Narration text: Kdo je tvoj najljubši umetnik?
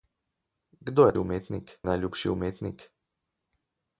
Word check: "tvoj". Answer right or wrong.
wrong